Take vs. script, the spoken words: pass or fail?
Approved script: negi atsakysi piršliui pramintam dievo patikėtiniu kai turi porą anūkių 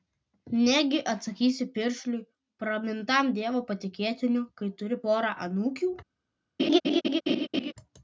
pass